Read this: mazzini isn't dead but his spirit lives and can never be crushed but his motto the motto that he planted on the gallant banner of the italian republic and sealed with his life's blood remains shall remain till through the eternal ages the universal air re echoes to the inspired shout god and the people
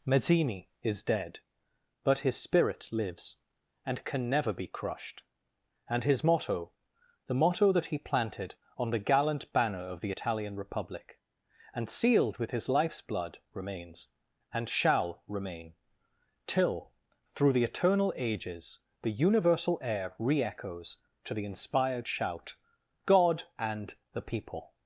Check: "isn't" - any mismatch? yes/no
yes